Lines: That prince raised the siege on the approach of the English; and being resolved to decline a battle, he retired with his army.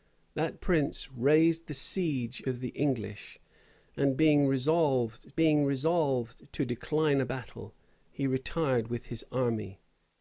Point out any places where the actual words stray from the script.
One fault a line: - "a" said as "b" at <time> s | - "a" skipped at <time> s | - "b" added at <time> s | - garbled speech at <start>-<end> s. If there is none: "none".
- "on the approach" skipped at 2.4 s
- "being resolved" added at 5.4 s